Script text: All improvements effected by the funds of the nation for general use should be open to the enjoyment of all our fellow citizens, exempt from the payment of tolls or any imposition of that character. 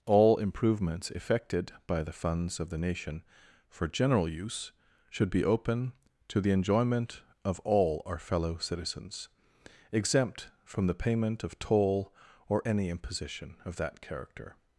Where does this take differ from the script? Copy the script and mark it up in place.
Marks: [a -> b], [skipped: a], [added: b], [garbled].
All improvements effected by the funds of the nation for general use should be open to the enjoyment of all our fellow citizens, exempt from the payment of [tolls -> toll] or any imposition of that character.